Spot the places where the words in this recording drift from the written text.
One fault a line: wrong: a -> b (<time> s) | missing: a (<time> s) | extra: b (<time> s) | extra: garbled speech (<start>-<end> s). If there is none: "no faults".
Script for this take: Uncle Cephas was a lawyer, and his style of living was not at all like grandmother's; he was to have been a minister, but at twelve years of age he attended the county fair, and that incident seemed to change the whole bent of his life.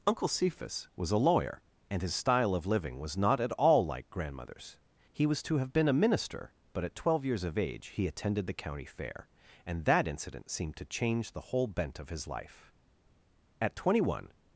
extra: At twenty one (13.6 s)